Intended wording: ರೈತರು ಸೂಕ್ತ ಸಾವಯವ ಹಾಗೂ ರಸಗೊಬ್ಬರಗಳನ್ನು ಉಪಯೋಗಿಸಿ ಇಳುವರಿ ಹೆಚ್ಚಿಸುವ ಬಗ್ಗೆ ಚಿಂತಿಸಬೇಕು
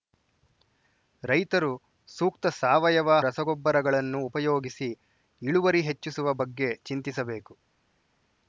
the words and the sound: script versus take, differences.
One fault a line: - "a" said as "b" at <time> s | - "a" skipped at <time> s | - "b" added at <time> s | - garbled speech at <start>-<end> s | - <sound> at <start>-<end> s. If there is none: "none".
- "ಹಾಗೂ" skipped at 3.2 s